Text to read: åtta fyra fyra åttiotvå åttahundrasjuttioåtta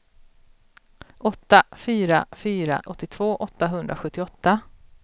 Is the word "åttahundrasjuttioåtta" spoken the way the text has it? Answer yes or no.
yes